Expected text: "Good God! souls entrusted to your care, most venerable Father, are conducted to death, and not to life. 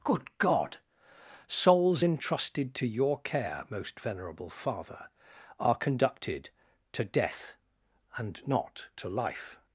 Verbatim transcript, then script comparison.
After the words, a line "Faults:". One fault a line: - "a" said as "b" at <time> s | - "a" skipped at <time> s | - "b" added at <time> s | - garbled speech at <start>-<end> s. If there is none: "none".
"Good God! souls entrusted to your care, most venerable Father, are conducted to death, and not to life.
Faults:
none